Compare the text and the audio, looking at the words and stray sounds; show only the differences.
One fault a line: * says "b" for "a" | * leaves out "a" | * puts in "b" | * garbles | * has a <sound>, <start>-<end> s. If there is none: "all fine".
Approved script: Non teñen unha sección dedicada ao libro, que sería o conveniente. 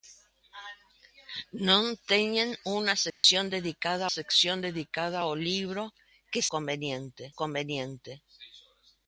* has a dropout, 3.1-3.2 s
* puts in "sección dedicada"
* says "conveniente" for "sería"